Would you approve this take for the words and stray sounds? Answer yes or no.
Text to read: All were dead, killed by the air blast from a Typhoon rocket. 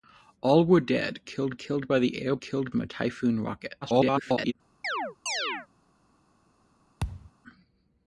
no